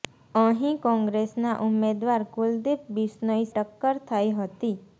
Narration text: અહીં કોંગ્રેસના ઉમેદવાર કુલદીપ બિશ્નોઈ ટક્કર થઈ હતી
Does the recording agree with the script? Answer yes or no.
yes